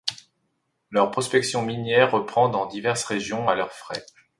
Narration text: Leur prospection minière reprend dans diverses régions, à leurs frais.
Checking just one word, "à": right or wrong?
right